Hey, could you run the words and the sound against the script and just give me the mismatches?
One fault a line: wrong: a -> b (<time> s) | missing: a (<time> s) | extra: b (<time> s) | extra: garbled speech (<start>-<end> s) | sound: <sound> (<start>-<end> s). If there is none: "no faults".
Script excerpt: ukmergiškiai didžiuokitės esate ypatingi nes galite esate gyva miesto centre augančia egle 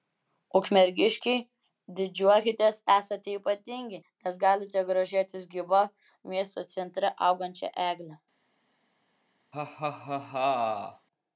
wrong: esate -> grožėtis (4.9 s)
sound: laugh (9.5-11.1 s)